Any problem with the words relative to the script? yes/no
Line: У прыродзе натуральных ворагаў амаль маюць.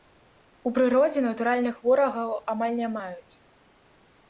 yes